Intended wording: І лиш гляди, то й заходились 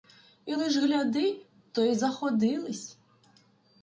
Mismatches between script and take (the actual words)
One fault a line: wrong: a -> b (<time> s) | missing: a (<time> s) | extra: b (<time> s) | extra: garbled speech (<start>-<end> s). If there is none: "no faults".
no faults